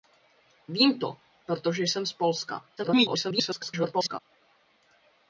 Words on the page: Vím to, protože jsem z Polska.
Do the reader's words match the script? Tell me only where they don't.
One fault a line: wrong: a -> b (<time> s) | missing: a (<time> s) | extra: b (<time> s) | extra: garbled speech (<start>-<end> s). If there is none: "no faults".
extra: garbled speech (2.8-4.2 s)